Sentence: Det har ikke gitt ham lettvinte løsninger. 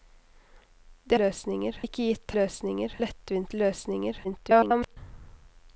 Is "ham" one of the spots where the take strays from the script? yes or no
yes